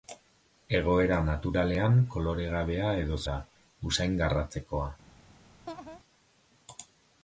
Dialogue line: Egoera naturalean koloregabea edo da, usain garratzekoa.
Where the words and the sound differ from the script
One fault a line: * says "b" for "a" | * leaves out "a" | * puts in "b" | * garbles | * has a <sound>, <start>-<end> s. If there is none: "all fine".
* has a laugh, 5.7-6.0 s